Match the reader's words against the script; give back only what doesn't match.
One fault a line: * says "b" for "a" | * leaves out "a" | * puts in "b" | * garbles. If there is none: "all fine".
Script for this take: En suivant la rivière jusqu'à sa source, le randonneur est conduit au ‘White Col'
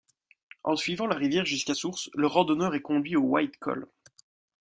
* leaves out "sa"